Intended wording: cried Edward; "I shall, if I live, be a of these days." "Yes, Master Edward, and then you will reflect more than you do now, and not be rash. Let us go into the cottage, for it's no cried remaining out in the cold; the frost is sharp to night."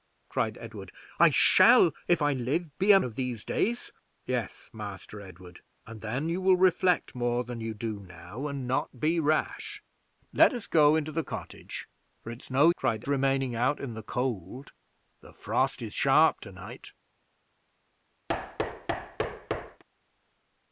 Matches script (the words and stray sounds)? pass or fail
fail